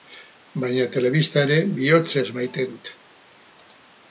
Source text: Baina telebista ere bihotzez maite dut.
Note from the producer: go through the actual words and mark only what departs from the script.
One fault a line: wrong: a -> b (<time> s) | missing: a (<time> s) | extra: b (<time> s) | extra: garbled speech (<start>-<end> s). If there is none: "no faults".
no faults